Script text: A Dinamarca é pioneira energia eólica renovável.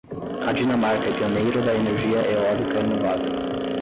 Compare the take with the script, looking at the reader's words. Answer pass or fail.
fail